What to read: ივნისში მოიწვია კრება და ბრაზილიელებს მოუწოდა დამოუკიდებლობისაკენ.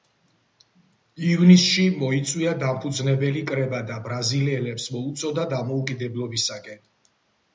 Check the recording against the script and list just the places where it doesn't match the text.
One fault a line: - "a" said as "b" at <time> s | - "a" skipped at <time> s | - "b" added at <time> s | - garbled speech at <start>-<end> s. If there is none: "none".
- "დამფუძნებელი" added at 2.6 s